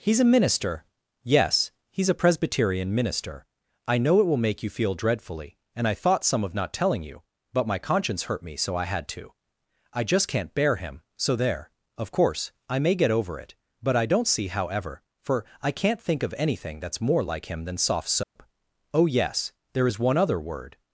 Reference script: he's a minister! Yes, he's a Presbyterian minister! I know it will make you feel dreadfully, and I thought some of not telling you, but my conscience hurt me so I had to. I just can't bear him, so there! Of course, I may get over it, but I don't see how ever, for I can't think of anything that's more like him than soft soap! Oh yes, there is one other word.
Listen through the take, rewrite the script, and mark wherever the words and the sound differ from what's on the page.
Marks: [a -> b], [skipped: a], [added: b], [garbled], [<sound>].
he's a minister! Yes, he's a Presbyterian minister! I know it will make you feel dreadfully, and I thought some of not telling you, but my conscience hurt me so I had to. I just can't bear him, so there! Of course, I may get over it, but I don't see how ever, for I can't think of anything that's more like him than soft soap! [dropout] Oh yes, there is one other word.